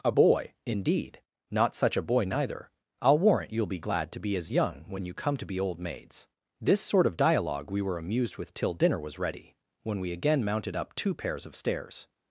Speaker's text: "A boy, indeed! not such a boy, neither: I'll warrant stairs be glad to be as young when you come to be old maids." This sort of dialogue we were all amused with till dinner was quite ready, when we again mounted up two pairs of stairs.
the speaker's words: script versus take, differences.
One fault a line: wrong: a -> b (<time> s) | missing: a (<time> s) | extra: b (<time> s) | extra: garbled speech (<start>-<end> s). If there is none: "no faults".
wrong: stairs -> you'll (3.5 s)
missing: all (8.0 s)
missing: quite (9.2 s)